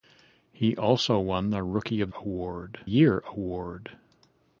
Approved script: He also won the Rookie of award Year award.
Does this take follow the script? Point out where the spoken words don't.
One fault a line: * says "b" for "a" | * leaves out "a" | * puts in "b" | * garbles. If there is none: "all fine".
all fine